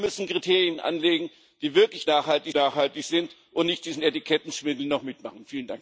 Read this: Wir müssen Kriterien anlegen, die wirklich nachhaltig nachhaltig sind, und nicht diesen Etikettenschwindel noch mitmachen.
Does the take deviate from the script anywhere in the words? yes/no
no